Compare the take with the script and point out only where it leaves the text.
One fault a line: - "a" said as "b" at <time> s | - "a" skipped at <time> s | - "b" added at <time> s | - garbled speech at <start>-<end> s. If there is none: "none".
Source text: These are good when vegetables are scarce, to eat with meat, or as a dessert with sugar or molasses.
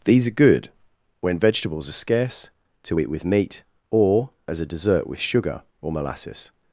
none